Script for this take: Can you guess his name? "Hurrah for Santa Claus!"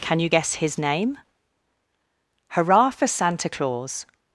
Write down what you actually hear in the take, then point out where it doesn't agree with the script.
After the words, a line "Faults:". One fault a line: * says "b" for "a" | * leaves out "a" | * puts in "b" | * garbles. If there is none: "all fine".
Can you guess his name? "Hurrah for Santa Claus!"
Faults:
all fine